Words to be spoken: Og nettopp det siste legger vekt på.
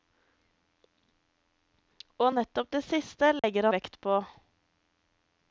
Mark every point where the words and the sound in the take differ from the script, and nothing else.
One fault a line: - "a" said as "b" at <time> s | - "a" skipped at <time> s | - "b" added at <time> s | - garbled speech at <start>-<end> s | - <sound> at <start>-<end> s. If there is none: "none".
- dropout at 3.4-3.4 s